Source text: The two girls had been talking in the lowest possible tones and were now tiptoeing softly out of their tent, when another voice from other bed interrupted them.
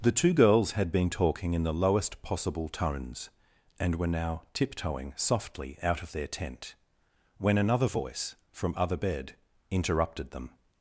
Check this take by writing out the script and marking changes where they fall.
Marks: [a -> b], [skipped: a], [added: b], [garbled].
The two girls had been talking in the lowest possible tones and were now tiptoeing softly out of their tent, when another voice from other bed interrupted them.